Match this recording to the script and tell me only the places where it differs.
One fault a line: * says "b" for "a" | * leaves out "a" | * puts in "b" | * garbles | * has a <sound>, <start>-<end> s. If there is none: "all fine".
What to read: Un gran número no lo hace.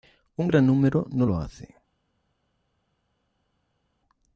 all fine